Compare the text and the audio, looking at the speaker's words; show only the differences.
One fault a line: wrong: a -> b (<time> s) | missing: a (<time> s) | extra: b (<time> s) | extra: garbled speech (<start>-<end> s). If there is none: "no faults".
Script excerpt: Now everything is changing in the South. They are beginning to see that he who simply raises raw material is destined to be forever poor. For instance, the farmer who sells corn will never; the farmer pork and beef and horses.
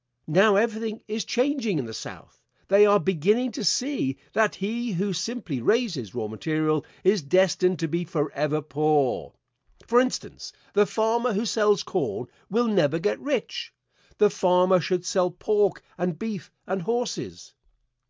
extra: get rich (13.0 s)
extra: should sell (14.8 s)